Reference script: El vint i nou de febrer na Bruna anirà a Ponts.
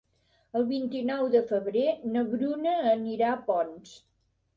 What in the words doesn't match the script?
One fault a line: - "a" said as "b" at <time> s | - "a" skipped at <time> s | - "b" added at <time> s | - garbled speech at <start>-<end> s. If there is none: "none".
none